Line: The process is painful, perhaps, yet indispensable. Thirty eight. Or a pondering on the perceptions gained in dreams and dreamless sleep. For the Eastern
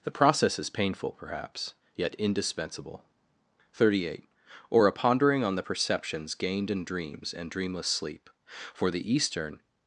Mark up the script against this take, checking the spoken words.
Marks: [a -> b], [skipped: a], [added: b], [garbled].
The process is painful, perhaps, yet indispensable. Thirty eight. Or a pondering on the perceptions gained in dreams and dreamless sleep. For the Eastern